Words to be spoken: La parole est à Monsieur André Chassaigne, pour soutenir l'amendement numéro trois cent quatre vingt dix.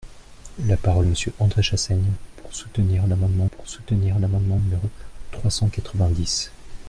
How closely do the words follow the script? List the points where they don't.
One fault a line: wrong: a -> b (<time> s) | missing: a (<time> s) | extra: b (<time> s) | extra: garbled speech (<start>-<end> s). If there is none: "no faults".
missing: est (1.1 s)
extra: pour soutenir l'amendement (3.6 s)